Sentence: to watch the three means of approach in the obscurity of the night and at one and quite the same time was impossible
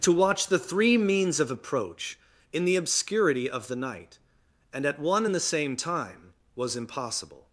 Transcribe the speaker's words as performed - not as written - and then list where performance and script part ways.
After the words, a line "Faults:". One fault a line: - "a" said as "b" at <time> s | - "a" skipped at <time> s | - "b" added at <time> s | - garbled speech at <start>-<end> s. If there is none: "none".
to watch the three means of approach in the obscurity of the night and at one and the same time was impossible
Faults:
- "quite" skipped at 5.3 s